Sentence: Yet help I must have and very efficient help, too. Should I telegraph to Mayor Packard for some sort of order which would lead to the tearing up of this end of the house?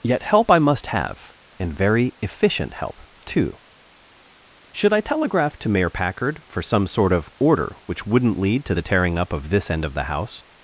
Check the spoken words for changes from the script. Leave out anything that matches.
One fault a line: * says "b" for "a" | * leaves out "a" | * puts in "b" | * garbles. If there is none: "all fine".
* says "wouldn't" for "would"